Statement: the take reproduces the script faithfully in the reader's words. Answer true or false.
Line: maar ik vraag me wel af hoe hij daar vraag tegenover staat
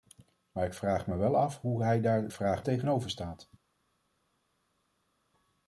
true